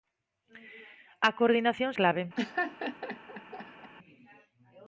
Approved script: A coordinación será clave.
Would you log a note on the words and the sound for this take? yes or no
yes